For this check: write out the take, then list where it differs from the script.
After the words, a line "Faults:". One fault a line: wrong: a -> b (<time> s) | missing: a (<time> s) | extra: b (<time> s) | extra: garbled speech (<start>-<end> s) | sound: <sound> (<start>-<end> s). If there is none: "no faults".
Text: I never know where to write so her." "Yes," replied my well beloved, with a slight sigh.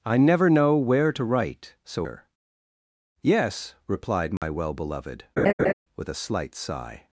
I never know where to write so her." "Yes," replied my well beloved, with a slight sigh.
Faults:
sound: dropout (4.4-4.4 s)
sound: laugh (5.4-5.7 s)